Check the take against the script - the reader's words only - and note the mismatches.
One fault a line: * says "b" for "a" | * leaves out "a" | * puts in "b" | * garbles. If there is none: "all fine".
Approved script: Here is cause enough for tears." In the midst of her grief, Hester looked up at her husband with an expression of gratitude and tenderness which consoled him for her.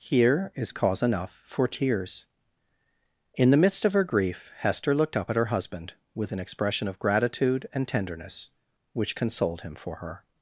all fine